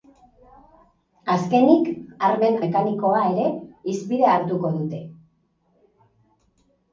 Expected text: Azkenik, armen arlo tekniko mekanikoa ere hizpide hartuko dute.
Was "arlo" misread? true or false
true